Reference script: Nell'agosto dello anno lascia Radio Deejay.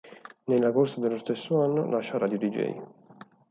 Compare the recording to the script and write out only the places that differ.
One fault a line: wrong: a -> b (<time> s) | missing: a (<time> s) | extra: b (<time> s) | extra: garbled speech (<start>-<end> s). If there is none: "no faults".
extra: stesso (1.1 s)